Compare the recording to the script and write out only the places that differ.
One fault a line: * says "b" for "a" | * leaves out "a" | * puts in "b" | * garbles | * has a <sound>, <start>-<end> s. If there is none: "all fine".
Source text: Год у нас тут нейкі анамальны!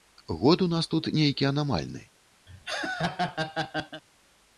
* has a laugh, 2.5-4.0 s